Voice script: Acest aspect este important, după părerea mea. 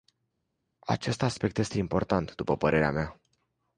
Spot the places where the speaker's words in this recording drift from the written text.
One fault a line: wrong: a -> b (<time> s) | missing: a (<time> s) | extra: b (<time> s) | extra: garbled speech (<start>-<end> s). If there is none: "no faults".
no faults